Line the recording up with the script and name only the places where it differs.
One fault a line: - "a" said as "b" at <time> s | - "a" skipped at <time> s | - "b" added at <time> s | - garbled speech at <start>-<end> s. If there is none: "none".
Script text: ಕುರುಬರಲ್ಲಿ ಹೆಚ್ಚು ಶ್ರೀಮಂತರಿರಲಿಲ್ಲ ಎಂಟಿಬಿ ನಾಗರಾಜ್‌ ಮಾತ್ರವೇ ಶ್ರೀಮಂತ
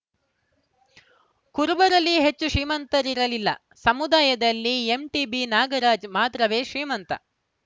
- "ಸಮುದಾಯದಲ್ಲಿ" added at 3.8 s